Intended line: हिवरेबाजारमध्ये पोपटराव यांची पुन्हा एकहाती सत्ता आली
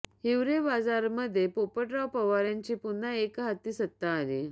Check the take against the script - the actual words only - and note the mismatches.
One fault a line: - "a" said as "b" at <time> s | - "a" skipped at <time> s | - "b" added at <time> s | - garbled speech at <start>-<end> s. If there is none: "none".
- "पवार" added at 2.1 s